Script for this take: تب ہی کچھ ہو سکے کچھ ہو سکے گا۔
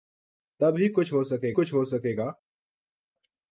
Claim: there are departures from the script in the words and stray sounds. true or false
false